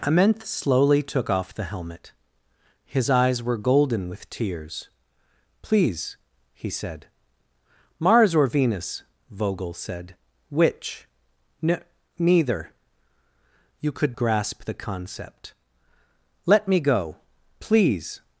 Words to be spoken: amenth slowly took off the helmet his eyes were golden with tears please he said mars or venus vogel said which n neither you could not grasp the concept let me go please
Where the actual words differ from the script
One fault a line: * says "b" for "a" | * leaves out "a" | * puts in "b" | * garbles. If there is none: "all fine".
* leaves out "not"